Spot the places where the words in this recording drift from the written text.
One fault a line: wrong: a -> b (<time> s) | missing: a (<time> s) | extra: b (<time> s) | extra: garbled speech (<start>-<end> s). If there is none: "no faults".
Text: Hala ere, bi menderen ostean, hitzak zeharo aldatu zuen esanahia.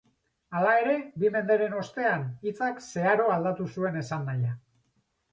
no faults